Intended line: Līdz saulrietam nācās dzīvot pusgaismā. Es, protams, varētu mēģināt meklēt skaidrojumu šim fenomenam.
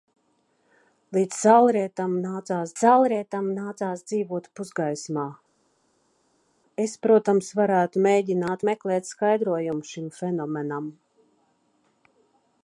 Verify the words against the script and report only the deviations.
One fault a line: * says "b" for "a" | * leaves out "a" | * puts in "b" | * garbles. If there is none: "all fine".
* puts in "saulrietam nācās"